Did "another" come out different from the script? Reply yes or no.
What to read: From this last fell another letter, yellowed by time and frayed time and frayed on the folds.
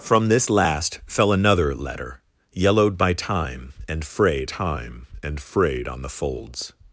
no